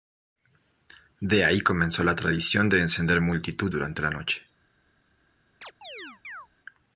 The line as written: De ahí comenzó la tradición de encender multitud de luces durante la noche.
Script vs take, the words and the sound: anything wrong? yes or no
yes